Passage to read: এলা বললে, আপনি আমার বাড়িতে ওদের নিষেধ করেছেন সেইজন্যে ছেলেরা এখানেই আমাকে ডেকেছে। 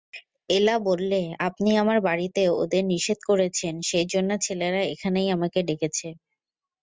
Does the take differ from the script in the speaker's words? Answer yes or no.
no